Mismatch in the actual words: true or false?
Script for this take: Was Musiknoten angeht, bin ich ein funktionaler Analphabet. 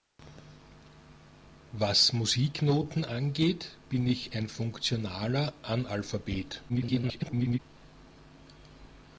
true